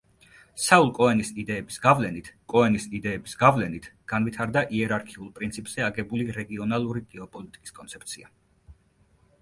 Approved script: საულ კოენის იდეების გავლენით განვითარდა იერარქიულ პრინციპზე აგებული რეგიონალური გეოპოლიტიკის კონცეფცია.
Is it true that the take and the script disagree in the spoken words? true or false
true